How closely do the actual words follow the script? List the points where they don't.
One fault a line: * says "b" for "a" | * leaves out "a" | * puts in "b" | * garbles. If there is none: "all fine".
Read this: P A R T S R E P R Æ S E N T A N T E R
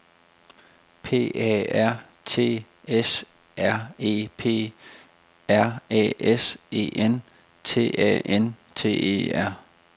all fine